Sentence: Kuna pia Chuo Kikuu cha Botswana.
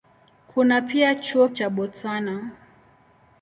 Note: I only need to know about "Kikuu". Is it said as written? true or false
false